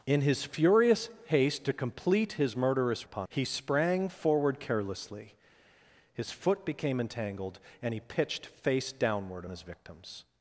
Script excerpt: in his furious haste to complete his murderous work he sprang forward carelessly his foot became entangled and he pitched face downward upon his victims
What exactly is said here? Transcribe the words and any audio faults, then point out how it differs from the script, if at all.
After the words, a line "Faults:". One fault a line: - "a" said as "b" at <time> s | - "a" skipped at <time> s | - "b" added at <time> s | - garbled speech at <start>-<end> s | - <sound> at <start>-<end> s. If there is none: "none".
in his furious haste to complete his murderous upon he sprang forward carelessly his foot became entangled and he pitched face downward his victims
Faults:
- "work" said as "upon" at 3.0 s
- "upon" skipped at 9.4 s